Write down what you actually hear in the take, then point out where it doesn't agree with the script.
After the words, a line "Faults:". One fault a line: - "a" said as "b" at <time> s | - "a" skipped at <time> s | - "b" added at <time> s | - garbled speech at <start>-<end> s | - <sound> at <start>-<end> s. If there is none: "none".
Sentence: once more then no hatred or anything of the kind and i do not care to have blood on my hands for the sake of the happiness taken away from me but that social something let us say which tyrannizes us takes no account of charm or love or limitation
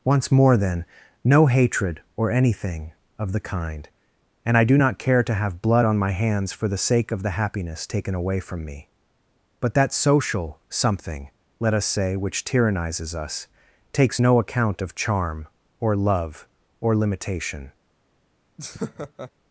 once more then no hatred or anything of the kind and i do not care to have blood on my hands for the sake of the happiness taken away from me but that social something let us say which tyrannizes us takes no account of charm or love or limitation
Faults:
- laugh at 18.6-19.3 s